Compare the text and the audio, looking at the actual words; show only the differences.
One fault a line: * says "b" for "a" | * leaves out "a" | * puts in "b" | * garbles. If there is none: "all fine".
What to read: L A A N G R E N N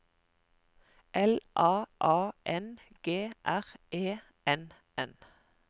all fine